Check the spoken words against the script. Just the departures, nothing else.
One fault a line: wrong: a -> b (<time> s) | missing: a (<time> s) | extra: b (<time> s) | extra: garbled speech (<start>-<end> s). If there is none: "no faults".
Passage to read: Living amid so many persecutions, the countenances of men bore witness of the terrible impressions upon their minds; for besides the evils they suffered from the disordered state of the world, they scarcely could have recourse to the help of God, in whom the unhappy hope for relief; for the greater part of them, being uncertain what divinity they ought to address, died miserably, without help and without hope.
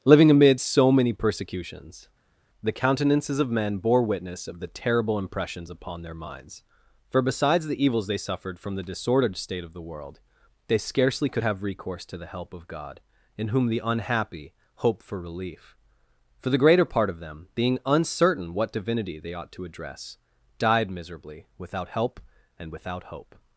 no faults